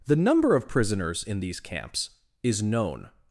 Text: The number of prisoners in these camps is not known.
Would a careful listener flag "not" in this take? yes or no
yes